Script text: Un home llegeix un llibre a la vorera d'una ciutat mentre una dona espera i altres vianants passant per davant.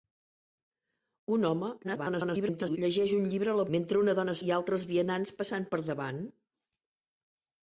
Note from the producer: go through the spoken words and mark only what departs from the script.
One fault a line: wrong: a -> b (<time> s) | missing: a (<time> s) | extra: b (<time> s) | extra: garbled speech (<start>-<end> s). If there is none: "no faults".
extra: garbled speech (1.8-2.8 s)
missing: vorera d'una ciutat (3.6 s)
missing: espera (4.4 s)